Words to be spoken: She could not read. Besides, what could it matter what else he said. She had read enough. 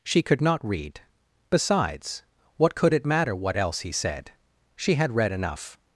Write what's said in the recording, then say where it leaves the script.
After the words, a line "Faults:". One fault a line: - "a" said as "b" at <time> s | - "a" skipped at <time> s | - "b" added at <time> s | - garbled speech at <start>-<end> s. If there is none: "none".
She could not read. Besides, what could it matter what else he said. She had read enough.
Faults:
none